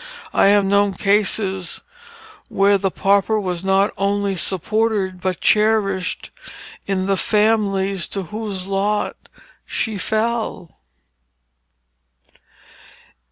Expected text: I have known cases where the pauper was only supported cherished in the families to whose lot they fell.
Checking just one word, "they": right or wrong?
wrong